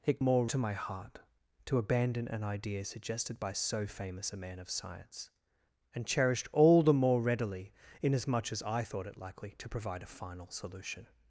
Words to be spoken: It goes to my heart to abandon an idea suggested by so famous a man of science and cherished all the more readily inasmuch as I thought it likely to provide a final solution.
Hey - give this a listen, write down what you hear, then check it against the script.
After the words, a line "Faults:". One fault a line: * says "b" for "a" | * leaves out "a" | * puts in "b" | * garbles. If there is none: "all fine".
It more to my heart to abandon an idea suggested by so famous a man of science and cherished all the more readily inasmuch as I thought it likely to provide a final solution.
Faults:
* says "more" for "goes"